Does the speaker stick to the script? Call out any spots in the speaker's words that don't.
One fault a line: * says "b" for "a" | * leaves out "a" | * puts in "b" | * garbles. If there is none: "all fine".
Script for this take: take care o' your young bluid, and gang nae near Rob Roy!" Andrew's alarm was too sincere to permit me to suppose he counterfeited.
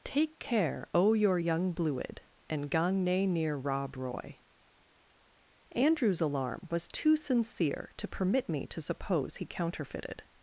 all fine